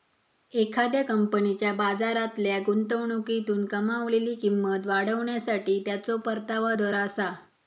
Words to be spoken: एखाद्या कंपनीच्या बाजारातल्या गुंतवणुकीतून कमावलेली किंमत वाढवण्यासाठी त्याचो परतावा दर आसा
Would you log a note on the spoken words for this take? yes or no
no